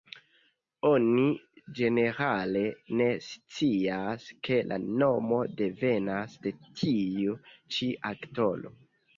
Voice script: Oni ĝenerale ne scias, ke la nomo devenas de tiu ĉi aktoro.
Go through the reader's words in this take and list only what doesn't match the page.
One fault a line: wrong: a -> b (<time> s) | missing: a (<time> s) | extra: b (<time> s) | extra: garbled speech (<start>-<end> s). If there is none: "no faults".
no faults